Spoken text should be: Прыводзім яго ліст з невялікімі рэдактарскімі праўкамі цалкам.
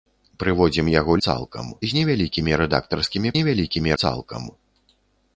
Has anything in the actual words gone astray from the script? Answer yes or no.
yes